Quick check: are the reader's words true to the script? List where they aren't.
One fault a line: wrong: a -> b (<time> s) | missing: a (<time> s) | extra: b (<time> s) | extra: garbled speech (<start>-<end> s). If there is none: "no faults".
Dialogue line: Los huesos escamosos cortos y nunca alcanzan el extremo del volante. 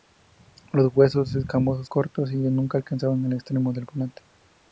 no faults